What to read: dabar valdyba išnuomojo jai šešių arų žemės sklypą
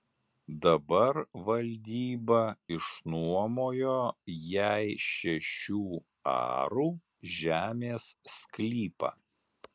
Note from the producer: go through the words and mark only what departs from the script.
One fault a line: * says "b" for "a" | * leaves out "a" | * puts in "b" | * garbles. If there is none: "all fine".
all fine